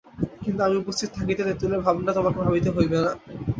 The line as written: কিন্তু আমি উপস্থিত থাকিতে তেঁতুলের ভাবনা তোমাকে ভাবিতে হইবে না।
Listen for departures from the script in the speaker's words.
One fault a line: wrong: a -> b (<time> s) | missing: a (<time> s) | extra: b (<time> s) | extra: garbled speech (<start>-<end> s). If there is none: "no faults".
no faults